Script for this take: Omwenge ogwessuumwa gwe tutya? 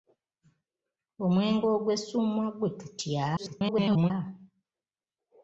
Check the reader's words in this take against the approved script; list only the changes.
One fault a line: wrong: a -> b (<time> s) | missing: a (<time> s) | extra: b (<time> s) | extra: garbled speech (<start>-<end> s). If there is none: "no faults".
extra: garbled speech (3.4-4.1 s)